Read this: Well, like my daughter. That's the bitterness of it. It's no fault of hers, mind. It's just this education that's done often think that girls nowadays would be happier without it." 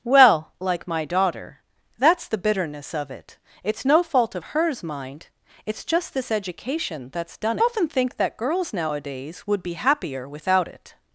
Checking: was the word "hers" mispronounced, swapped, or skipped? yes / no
no